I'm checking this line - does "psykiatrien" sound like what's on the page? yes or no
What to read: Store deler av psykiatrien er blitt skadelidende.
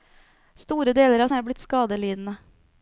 no